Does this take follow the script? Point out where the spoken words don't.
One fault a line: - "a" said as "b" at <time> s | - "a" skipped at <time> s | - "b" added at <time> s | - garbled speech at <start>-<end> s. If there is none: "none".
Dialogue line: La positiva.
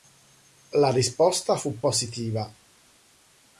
- "risposta fu" added at 0.9 s